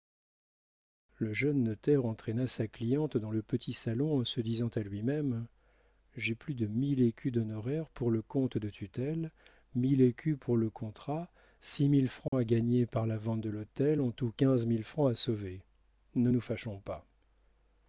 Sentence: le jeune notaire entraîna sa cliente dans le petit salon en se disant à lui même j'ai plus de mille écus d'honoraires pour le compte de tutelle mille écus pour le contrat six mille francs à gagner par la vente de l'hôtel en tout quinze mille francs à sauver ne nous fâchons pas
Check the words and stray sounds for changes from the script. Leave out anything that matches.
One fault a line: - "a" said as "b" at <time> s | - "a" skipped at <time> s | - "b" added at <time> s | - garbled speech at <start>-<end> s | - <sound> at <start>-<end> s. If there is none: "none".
- dropout at 12.3-12.3 s